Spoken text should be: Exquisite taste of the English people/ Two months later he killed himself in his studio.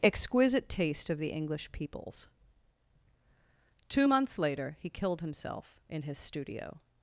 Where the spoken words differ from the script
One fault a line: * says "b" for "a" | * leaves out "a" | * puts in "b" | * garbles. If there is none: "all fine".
* says "peoples" for "people"